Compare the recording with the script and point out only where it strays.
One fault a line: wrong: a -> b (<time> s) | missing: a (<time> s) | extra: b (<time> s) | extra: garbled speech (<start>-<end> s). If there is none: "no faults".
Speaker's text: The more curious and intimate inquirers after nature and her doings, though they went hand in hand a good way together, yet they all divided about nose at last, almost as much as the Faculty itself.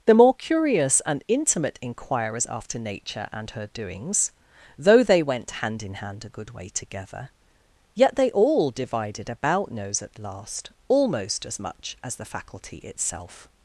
no faults